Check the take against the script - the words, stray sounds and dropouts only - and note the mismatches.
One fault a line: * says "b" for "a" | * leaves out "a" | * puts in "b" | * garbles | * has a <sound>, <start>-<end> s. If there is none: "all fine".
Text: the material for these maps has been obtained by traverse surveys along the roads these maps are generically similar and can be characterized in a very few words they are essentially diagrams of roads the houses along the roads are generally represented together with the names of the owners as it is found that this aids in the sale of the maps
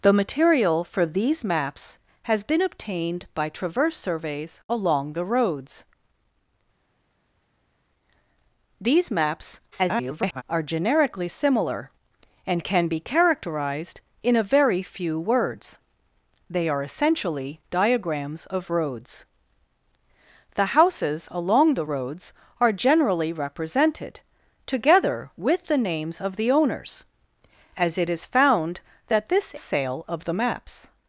* garbles
* leaves out "aids in the"